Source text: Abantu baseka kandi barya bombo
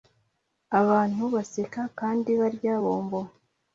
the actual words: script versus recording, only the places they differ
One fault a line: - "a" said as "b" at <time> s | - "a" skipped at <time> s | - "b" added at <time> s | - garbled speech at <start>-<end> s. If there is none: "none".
none